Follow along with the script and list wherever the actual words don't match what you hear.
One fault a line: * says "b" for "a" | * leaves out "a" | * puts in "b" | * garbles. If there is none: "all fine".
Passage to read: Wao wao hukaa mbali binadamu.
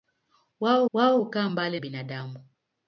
all fine